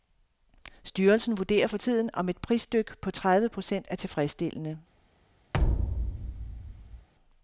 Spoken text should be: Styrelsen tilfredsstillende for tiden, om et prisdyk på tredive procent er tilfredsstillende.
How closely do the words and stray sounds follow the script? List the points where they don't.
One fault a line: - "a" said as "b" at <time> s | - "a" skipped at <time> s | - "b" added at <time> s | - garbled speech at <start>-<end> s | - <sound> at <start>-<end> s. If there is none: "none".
- "tilfredsstillende" said as "vurderer" at 1.4 s
- thud at 5.5-7.1 s